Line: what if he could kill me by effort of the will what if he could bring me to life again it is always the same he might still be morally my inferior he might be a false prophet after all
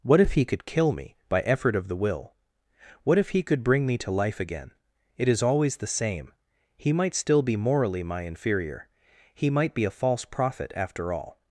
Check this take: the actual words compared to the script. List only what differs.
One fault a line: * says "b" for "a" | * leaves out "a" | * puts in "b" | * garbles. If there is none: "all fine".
all fine